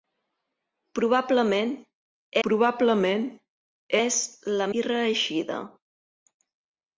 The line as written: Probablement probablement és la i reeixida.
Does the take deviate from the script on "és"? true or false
false